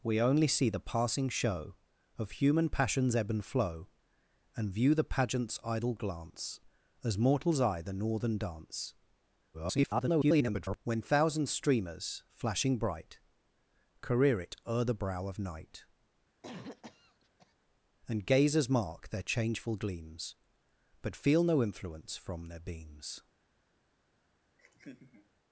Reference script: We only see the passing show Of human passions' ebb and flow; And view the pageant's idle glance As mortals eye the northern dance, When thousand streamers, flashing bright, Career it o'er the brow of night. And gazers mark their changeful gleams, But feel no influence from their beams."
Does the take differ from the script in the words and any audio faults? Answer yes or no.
yes